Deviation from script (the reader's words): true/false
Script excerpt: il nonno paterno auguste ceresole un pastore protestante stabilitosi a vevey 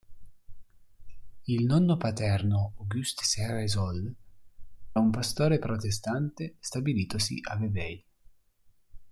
false